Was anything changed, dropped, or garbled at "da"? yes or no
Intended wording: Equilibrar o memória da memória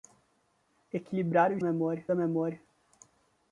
no